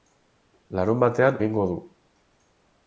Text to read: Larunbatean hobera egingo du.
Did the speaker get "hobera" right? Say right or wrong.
wrong